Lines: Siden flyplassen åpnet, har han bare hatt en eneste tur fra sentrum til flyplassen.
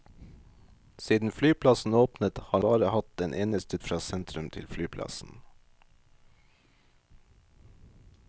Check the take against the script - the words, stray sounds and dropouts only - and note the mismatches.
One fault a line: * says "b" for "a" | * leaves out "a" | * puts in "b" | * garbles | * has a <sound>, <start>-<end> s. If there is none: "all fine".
* leaves out "han"
* leaves out "tur"